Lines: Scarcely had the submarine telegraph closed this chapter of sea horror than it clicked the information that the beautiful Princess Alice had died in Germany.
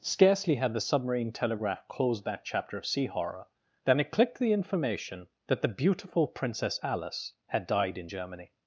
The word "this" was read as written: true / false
false